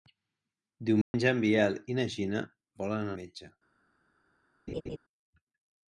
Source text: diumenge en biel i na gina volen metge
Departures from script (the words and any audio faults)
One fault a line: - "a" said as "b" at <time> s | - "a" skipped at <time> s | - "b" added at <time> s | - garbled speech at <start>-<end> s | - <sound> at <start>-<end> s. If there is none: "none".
- dropout at 1.0-1.1 s
- laugh at 4.7-5.0 s